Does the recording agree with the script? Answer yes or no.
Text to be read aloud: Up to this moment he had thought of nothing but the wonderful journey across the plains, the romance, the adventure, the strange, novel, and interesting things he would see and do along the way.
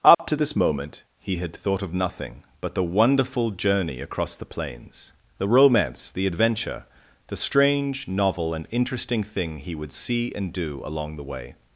no